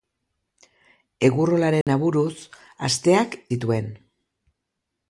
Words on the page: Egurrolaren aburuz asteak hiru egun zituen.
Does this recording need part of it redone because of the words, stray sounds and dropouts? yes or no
yes